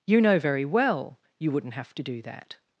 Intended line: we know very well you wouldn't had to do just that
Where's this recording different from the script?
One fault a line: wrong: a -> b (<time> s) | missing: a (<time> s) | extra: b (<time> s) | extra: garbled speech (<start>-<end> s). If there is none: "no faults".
wrong: we -> you (0.1 s)
wrong: had -> have (1.8 s)
missing: just (2.2 s)